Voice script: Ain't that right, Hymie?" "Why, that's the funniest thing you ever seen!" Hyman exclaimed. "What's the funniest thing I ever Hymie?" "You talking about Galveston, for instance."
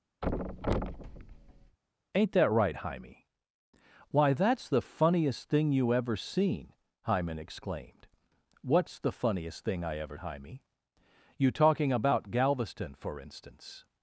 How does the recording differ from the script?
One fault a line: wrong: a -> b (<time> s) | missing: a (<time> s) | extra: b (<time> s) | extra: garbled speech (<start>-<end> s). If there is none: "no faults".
no faults